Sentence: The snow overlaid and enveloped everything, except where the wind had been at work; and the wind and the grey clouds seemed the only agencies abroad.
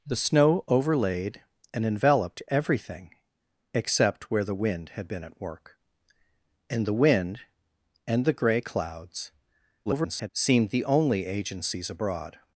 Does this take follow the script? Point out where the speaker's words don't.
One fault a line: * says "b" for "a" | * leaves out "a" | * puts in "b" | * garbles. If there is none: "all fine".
* garbles